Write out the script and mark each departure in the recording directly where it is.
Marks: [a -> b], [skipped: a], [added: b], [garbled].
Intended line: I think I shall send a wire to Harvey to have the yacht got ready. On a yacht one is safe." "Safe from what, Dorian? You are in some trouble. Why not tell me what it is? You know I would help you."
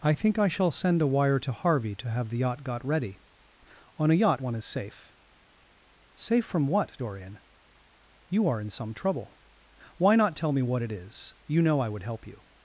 I think I shall send a wire to Harvey to have the yacht got ready. On a yacht one is safe." "Safe from what, Dorian? You are in some trouble. Why not tell me what it is? You know I would help you."